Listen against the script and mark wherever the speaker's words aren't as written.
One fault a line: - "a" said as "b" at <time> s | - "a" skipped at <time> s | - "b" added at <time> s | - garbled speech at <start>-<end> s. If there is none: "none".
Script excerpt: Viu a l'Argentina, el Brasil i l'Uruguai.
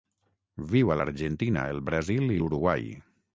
none